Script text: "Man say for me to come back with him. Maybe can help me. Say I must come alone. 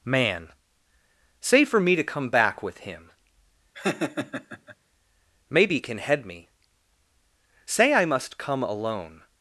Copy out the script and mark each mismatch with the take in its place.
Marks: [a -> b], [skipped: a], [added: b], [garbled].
"Man say for me to come back with him. Maybe can [help -> head] me. Say I must come alone.